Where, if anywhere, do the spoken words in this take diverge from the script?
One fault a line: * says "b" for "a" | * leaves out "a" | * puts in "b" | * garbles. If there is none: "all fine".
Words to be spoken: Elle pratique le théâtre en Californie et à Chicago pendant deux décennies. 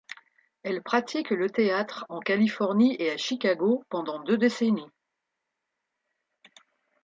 all fine